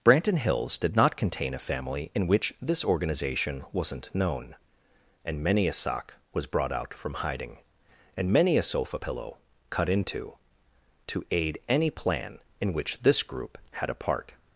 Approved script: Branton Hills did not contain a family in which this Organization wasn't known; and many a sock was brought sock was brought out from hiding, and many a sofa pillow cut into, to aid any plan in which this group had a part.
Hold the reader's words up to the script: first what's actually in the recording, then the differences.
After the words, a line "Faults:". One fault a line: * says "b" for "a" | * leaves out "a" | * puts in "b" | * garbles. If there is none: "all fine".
Branton Hills did not contain a family in which this Organization wasn't known; and many a sock was brought out from hiding, and many a sofa pillow cut into, to aid any plan in which this group had a part.
Faults:
* leaves out "sock was brought"